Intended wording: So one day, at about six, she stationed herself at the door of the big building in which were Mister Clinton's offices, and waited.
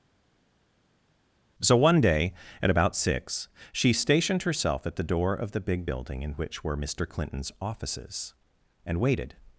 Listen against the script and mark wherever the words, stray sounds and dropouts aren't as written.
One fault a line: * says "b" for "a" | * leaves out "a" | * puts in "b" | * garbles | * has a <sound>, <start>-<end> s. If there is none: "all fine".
all fine